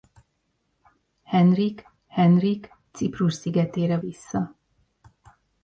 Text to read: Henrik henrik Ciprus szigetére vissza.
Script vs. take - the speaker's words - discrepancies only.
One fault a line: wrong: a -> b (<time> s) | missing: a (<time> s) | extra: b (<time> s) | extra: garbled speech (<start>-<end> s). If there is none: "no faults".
no faults